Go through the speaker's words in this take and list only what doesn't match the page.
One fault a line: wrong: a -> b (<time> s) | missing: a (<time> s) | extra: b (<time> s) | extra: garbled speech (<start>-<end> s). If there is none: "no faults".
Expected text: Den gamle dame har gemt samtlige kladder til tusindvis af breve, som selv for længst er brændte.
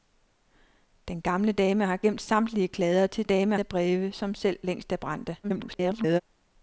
wrong: tusindvis -> dame (3.2 s)
missing: for (4.6 s)
extra: garbled speech (5.4-6.2 s)